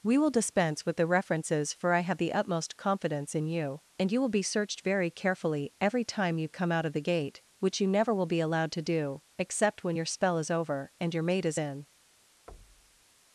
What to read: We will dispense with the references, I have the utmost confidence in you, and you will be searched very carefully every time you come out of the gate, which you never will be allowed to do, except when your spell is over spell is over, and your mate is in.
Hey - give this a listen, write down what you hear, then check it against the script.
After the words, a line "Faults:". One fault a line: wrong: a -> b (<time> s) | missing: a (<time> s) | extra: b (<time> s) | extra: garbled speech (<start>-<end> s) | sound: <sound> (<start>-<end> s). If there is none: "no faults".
We will dispense with the references, for I have the utmost confidence in you, and you will be searched very carefully every time you come out of the gate, which you never will be allowed to do, except when your spell is over, and your mate is in.
Faults:
extra: for (1.7 s)
missing: spell is over (10.9 s)
sound: thud (12.5-13.0 s)